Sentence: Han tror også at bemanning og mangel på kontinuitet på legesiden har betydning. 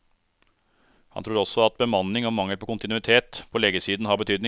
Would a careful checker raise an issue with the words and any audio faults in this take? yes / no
no